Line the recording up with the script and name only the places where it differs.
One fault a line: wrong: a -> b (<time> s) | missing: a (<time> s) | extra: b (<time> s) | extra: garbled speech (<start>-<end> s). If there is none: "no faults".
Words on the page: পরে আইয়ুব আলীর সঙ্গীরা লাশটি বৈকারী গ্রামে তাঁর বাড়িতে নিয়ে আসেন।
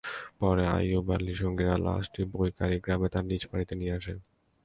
extra: নিজ (3.3 s)